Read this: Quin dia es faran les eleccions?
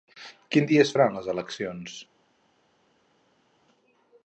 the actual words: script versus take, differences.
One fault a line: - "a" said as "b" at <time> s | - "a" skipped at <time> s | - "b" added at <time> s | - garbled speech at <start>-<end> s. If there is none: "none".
none